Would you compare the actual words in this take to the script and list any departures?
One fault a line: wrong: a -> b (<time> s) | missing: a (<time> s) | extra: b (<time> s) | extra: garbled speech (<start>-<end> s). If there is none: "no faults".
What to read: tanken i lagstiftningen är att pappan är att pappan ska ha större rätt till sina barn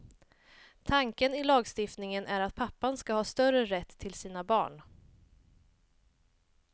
missing: är att pappan (3.0 s)